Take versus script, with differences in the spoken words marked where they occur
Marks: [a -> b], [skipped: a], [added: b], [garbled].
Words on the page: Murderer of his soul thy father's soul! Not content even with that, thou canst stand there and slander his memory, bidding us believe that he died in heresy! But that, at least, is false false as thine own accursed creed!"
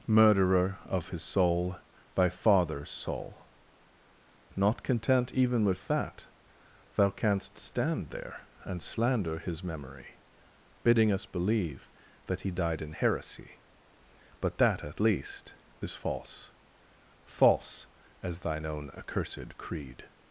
Murderer of his soul thy father's soul! Not content even with that, thou canst stand there and slander his memory, bidding us believe that he died in heresy! But that, at least, is false false as thine own accursed creed!"